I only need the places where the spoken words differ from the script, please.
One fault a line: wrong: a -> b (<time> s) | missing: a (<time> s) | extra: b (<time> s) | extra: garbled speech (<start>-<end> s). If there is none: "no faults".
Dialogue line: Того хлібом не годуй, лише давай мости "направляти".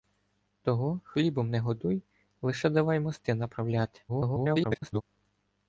extra: garbled speech (4.1-5.0 s)